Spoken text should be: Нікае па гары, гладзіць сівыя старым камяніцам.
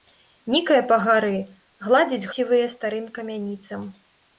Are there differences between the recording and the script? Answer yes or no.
no